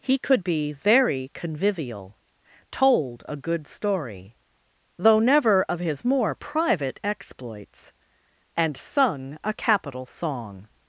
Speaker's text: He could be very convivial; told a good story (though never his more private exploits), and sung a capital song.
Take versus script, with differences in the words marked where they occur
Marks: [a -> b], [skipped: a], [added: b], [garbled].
He could be very convivial; told a good story (though never [added: of] his more private exploits), and sung a capital song.